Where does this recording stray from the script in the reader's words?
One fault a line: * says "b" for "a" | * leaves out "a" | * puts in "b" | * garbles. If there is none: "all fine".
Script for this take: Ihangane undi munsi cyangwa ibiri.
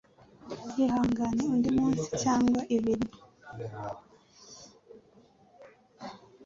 all fine